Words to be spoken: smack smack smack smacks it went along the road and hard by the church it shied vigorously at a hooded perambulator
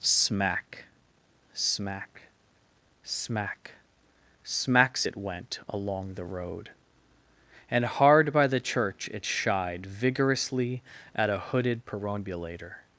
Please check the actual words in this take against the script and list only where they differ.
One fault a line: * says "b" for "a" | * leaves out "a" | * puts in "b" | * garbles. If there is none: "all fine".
all fine